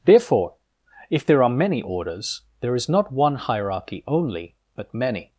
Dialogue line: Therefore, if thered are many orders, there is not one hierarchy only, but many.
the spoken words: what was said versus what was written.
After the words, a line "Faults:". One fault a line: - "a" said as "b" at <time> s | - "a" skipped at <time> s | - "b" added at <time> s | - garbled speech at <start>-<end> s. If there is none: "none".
Therefore, if there are many orders, there is not one hierarchy only, but many.
Faults:
- "thered" said as "there" at 1.2 s